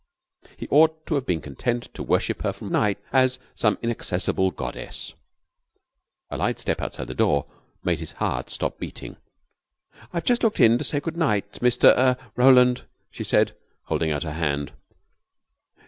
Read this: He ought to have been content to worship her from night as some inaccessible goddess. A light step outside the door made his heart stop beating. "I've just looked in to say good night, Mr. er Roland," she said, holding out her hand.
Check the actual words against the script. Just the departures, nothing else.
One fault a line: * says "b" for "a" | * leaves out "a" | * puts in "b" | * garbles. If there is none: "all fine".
all fine